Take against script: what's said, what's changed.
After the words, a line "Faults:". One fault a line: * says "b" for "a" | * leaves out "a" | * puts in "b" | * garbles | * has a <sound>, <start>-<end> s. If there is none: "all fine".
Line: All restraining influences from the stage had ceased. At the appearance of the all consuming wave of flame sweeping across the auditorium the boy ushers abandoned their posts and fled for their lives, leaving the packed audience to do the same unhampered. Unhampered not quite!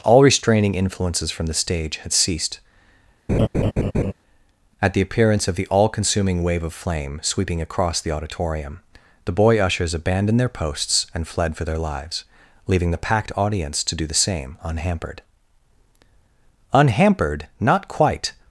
All restraining influences from the stage had ceased. At the appearance of the all consuming wave of flame sweeping across the auditorium the boy ushers abandoned their posts and fled for their lives, leaving the packed audience to do the same unhampered. Unhampered not quite!
Faults:
* has a laugh, 3.3-4.1 s